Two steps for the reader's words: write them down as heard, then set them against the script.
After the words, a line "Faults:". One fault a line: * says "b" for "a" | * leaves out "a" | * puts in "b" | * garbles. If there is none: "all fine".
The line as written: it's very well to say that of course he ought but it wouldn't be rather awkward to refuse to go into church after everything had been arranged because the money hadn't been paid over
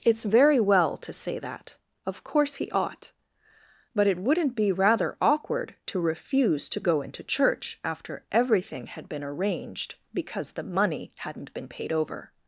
it's very well to say that of course he ought but it wouldn't be rather awkward to refuse to go into church after everything had been arranged because the money hadn't been paid over
Faults:
all fine